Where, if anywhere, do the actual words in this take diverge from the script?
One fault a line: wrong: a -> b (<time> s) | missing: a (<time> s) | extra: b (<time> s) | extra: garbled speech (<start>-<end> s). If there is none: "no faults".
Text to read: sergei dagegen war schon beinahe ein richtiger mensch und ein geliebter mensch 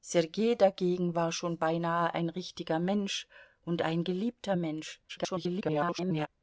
extra: garbled speech (5.1-6.3 s)